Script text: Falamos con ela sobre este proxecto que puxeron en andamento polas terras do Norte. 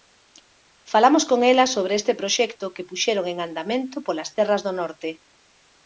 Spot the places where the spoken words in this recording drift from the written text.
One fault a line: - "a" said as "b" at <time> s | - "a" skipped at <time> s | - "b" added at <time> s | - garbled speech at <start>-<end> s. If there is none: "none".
none